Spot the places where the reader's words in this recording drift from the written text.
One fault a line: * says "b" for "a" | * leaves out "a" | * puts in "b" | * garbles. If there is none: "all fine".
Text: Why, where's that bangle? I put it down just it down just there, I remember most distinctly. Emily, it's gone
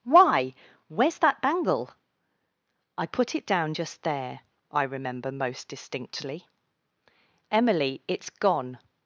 * leaves out "it down just"